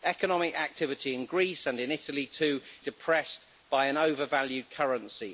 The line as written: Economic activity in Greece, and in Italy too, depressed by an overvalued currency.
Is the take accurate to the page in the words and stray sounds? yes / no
yes